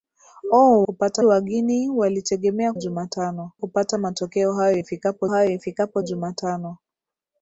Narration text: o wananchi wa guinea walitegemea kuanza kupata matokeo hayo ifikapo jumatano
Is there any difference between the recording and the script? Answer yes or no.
yes